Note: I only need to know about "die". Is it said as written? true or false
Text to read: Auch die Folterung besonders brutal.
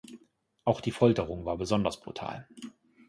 true